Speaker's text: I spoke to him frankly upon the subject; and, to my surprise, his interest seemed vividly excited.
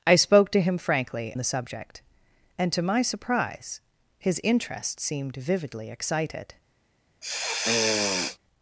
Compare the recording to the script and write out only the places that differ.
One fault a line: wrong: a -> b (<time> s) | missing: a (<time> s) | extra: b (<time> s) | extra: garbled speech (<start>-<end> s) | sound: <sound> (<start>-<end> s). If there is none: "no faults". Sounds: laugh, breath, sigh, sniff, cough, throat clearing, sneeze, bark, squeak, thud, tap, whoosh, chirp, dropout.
missing: upon (1.4 s)
sound: sniff (7.2-8.4 s)